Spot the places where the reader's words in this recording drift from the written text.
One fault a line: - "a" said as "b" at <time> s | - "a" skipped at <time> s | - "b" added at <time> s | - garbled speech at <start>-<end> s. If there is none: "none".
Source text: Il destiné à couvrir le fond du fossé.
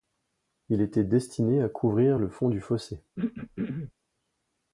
- "était" added at 0.8 s